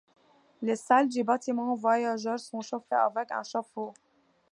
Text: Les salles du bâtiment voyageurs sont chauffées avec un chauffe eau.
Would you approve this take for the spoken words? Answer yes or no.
yes